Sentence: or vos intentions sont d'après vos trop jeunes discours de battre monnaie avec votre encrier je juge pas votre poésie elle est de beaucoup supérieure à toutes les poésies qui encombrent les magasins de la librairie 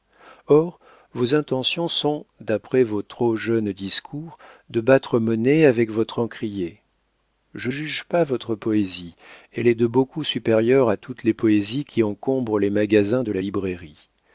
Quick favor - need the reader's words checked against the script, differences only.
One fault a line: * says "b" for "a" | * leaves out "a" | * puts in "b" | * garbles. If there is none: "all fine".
all fine